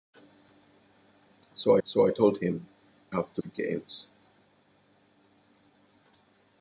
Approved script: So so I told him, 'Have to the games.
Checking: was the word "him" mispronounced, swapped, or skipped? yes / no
no